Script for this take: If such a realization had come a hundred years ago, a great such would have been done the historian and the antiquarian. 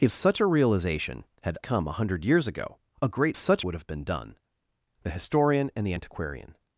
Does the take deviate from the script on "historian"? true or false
false